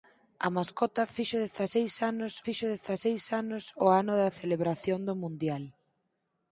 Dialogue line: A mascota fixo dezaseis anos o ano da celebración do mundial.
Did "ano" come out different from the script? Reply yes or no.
no